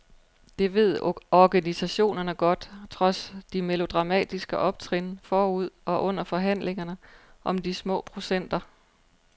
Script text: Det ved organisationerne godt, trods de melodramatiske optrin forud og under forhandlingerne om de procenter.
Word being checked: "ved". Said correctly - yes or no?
yes